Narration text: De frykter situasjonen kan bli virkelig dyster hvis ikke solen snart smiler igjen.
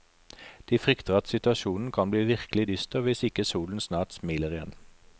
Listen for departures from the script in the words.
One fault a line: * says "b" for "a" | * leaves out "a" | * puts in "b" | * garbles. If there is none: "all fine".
* puts in "at"